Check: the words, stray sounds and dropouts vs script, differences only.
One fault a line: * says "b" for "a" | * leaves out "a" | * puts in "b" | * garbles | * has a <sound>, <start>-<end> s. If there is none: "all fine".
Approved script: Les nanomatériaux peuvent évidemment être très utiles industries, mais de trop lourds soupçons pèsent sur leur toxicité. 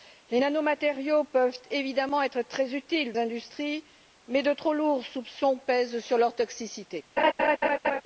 * has a laugh, 7.2-8.0 s